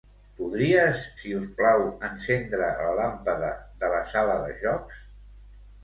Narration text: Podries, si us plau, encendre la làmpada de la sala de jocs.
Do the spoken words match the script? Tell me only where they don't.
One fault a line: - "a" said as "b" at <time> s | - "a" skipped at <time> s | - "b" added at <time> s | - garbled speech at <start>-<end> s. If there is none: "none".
none